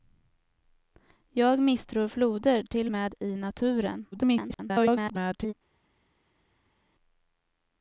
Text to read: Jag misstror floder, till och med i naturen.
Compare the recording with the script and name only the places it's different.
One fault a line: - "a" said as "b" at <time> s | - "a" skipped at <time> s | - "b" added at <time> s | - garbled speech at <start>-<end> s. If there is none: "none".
- "och" skipped at 2.9 s
- garbled speech at 4.1-5.5 s